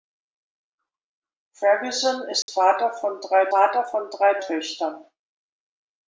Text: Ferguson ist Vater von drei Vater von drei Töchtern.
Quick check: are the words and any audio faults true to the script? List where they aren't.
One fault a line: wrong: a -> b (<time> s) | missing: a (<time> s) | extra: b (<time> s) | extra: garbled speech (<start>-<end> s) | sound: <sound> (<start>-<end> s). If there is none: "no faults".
sound: dropout (2.4-2.5 s)